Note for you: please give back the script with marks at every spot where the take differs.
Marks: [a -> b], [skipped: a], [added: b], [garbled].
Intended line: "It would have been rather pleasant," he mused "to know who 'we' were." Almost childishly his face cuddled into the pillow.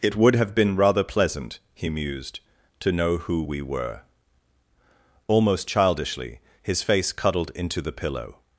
"It would have been rather pleasant," he mused "to know who 'we' were." Almost childishly his face cuddled into the pillow.